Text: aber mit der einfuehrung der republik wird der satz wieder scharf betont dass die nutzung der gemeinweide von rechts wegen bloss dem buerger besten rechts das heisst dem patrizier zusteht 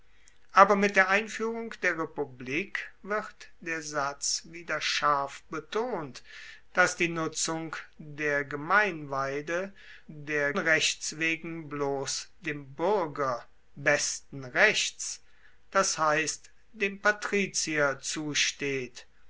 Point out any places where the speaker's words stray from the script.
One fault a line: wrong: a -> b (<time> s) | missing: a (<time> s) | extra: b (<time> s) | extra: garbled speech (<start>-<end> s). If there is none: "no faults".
wrong: von -> der (10.1 s)